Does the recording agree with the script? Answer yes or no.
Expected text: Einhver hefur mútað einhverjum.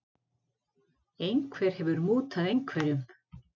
yes